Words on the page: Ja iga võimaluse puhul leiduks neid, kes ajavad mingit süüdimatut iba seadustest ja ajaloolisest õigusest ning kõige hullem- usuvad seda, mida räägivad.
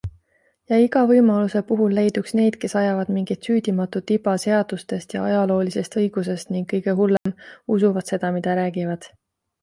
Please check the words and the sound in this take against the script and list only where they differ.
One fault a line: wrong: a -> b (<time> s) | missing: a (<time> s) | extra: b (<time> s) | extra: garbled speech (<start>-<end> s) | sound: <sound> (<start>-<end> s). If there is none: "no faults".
sound: dropout (7.2-7.3 s)